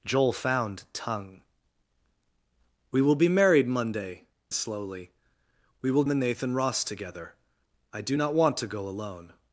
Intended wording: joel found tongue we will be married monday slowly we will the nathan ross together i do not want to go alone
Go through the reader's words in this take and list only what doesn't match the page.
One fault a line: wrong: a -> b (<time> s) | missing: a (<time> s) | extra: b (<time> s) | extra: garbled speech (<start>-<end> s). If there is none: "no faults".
no faults